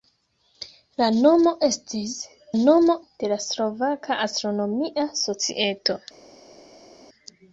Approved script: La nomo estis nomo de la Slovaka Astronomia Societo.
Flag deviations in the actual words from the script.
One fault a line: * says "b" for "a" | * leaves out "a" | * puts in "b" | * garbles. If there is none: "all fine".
all fine